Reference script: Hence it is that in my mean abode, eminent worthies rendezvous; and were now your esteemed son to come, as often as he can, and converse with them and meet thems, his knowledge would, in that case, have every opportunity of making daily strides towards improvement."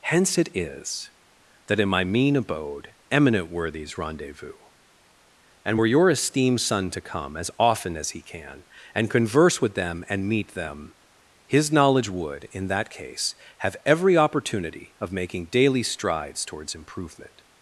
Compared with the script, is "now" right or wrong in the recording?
wrong